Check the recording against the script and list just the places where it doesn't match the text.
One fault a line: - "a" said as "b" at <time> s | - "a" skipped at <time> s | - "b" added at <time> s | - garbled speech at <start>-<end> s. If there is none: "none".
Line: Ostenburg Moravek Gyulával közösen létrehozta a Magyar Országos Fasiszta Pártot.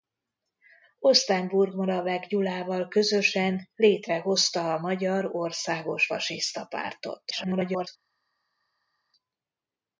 - garbled speech at 7.3-7.9 s